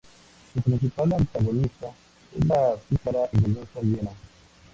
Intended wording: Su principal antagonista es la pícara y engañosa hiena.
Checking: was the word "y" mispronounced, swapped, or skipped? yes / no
yes